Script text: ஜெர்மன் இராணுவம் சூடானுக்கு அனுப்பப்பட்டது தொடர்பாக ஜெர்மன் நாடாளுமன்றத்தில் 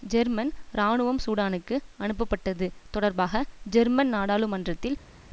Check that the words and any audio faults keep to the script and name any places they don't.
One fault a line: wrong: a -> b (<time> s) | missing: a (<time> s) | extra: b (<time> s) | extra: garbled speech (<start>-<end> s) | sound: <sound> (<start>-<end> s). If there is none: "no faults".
no faults